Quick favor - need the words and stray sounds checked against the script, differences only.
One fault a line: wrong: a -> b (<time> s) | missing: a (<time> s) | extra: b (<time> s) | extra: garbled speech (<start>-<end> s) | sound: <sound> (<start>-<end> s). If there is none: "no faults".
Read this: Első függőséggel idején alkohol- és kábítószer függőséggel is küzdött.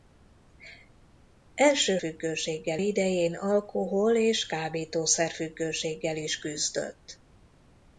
no faults